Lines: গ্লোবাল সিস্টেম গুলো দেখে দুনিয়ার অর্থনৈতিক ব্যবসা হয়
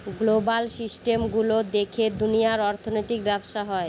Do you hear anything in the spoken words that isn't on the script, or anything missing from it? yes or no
no